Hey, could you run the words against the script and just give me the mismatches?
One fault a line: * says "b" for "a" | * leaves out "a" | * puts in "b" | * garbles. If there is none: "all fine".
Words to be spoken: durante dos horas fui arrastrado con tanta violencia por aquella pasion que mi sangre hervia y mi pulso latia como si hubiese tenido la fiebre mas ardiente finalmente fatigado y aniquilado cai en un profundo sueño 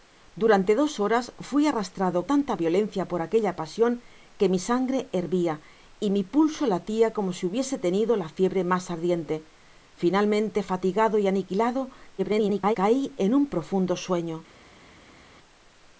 * leaves out "con"
* garbles